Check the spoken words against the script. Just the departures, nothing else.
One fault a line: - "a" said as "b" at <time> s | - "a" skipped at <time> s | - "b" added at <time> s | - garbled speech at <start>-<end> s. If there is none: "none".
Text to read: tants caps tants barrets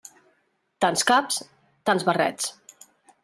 none